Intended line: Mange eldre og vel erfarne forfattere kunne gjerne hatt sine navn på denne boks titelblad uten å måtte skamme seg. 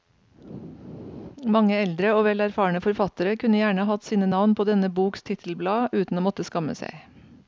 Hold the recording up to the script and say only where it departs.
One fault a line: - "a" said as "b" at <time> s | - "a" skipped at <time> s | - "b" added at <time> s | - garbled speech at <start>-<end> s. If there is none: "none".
none